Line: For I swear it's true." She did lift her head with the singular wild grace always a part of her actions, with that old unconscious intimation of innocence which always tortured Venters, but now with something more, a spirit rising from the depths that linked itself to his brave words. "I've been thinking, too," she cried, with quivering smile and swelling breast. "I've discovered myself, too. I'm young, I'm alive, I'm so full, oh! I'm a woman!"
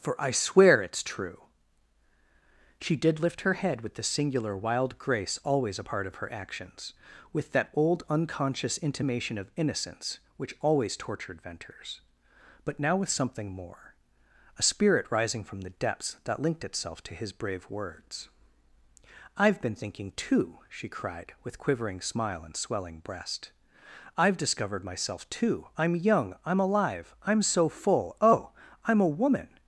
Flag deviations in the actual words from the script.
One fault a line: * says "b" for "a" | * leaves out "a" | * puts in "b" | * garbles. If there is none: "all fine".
all fine